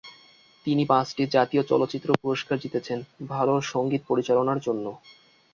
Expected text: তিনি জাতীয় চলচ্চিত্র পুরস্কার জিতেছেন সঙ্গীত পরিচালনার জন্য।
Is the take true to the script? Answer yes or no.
no